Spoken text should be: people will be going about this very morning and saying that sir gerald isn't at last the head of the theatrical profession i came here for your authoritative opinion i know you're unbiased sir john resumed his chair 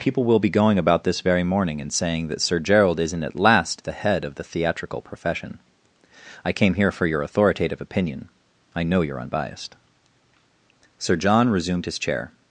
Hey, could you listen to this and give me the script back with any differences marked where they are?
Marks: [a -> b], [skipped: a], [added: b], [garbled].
people will be going about this very morning and saying that sir gerald isn't at last the head of the theatrical profession i came here for your authoritative opinion i know you're unbiased sir john resumed his chair